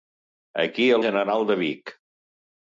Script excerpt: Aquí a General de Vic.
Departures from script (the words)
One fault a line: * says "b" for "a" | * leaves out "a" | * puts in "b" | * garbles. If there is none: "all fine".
all fine